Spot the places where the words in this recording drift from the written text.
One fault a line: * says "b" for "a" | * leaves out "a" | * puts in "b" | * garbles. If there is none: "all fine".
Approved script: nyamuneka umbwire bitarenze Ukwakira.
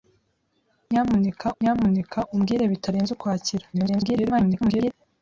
* puts in "nyamuneka"
* garbles